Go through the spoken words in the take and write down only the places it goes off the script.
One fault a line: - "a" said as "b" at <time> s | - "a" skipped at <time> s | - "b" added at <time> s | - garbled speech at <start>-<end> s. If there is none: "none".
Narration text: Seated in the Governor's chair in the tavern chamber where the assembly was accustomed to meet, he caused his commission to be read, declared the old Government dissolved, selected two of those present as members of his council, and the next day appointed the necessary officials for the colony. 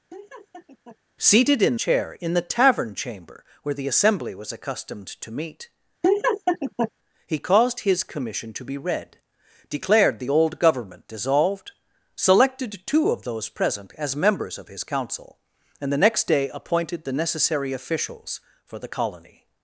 - "the Governor's" skipped at 1.8 s